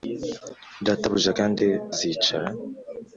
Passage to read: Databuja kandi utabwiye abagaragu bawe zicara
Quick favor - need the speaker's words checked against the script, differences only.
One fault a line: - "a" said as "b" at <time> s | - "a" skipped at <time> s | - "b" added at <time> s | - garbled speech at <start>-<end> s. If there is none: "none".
- "utabwiye abagaragu bawe" skipped at 1.6 s